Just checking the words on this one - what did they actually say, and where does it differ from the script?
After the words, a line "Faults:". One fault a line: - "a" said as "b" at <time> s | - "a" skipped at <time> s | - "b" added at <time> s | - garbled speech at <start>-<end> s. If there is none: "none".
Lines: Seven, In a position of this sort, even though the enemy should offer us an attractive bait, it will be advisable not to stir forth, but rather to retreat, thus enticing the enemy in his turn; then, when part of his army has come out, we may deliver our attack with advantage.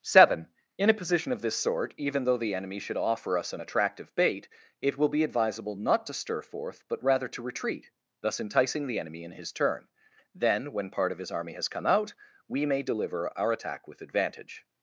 Seven, In a position of this sort, even though the enemy should offer us an attractive bait, it will be advisable not to stir forth, but rather to retreat, thus enticing the enemy in his turn; then, when part of his army has come out, we may deliver our attack with advantage.
Faults:
none